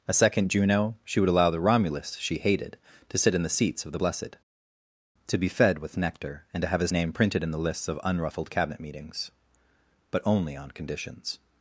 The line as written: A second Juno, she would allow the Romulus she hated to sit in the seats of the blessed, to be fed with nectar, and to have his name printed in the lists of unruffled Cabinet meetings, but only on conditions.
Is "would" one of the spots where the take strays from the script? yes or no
no